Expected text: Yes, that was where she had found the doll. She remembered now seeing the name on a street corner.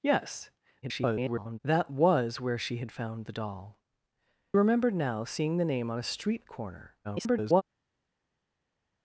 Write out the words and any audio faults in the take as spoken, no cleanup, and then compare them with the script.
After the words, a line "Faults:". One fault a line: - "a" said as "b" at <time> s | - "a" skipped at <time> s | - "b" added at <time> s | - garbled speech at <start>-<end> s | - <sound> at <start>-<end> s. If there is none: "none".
Yes, [garbled] that was where she had found the doll. Remembered now seeing the name on a street corner. [garbled]
Faults:
- garbled speech at 0.8-1.6 s
- "She" skipped at 3.8 s
- garbled speech at 7.0-7.6 s